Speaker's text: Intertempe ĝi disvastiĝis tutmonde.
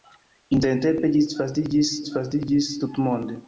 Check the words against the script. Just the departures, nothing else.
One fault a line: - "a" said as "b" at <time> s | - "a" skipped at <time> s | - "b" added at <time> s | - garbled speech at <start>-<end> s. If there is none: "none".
- "disvastiĝis" added at 2.0 s